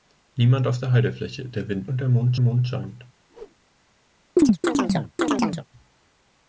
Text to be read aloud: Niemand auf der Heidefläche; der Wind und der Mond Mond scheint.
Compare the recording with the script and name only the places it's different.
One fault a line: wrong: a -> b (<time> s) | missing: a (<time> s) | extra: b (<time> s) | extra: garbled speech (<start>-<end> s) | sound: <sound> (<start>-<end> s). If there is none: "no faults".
sound: whoosh (3.3-3.6 s)
sound: chirp (4.4-5.7 s)